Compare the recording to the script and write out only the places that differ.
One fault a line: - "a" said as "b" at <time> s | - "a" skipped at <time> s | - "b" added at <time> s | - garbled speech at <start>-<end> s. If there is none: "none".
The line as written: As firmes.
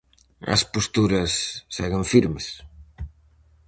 - "posturas seguen" added at 0.7 s